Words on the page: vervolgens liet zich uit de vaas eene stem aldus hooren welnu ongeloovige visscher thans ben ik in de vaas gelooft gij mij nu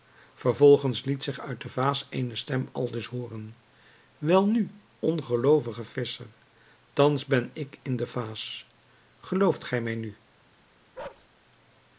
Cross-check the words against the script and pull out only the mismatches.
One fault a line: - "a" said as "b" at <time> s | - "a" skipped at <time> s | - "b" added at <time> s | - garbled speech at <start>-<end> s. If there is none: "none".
none